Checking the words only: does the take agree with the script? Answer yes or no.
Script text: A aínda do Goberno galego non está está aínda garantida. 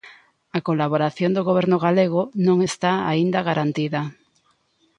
no